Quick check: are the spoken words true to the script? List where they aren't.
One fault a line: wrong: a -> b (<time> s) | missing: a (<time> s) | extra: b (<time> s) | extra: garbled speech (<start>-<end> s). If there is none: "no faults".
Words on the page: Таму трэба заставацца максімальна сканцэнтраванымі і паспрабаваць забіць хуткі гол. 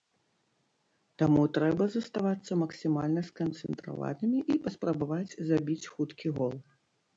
no faults